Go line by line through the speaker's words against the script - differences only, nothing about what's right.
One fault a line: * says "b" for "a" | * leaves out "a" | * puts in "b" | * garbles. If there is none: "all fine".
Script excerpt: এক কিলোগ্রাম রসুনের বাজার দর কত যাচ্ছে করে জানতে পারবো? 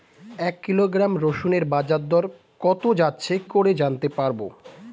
all fine